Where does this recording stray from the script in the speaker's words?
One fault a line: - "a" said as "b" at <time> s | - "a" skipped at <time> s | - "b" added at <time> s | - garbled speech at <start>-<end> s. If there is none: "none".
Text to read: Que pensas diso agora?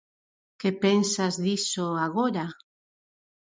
none